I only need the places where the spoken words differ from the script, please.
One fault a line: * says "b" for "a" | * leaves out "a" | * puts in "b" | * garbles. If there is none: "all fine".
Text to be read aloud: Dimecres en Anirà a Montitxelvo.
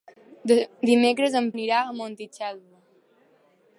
all fine